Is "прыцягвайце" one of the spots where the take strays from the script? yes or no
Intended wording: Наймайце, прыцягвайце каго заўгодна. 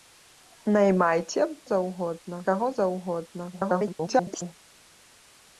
yes